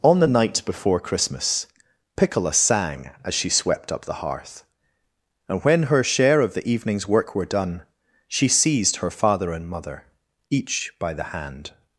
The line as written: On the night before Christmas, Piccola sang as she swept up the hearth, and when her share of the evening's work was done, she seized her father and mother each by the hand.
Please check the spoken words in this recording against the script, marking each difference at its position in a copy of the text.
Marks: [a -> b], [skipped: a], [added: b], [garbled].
On the night before Christmas, Piccola sang as she swept up the hearth, and when her share of the evening's work [was -> were] done, she seized her father and mother each by the hand.